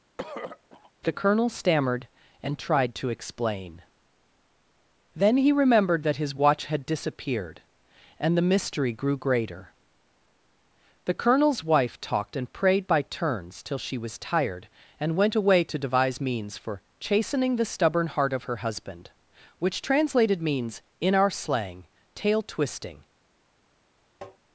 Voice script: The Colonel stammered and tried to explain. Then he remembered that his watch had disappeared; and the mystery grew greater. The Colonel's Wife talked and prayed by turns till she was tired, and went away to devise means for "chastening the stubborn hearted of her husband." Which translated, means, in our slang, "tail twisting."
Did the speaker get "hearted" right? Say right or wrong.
wrong